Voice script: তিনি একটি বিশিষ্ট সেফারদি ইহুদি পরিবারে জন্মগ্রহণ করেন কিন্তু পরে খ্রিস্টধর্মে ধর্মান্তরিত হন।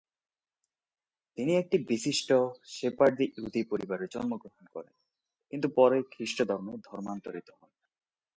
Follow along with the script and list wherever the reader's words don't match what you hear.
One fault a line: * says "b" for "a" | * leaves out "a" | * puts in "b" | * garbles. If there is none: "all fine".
all fine